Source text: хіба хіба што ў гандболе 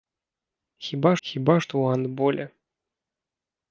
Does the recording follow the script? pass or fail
pass